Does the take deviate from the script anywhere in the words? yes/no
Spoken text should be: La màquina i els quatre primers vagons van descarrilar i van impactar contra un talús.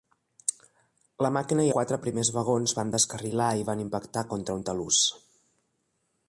yes